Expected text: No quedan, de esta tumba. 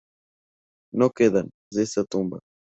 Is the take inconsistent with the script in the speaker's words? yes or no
no